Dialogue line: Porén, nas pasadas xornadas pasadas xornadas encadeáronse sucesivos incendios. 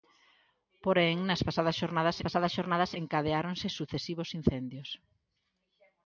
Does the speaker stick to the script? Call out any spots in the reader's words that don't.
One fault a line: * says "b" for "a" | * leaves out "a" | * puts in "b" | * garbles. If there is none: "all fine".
all fine